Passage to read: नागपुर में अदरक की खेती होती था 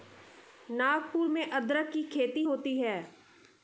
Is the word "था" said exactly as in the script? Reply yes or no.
no